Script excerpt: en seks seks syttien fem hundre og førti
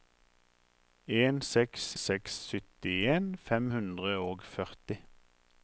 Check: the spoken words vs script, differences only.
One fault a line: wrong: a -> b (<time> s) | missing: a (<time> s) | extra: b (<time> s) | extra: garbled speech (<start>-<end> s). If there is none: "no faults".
no faults